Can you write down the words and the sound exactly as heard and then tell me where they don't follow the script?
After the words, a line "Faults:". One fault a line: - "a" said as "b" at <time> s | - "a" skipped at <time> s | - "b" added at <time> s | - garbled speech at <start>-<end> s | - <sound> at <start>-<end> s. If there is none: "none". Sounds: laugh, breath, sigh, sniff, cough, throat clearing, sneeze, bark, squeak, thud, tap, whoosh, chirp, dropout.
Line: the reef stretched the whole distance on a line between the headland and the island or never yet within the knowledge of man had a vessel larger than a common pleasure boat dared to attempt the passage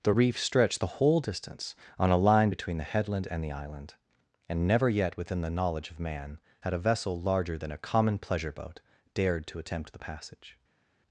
the reef stretched the whole distance on a line between the headland and the island and never yet within the knowledge of man had a vessel larger than a common pleasure boat dared to attempt the passage
Faults:
- "or" said as "and" at 4.5 s